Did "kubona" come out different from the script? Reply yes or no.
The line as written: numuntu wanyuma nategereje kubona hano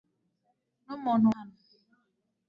yes